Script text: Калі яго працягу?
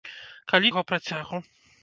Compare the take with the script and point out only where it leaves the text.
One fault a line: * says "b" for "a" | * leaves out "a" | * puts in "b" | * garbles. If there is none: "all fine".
all fine